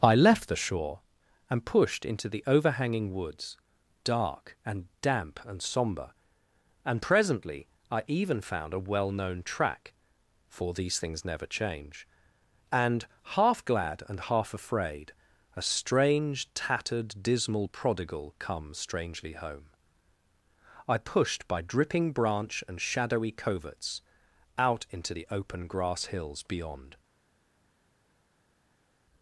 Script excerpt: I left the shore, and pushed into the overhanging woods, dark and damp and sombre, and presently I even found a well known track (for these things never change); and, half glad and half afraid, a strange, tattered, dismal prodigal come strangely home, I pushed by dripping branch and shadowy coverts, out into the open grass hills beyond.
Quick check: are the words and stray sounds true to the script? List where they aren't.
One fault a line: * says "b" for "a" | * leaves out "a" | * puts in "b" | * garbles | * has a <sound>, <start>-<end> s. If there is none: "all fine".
all fine